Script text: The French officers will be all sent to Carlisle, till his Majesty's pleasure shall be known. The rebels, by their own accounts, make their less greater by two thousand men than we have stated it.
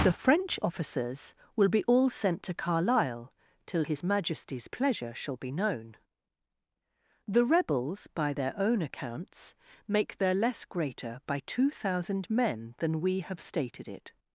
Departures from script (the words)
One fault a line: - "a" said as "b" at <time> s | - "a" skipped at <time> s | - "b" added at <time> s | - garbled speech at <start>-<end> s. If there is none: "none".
none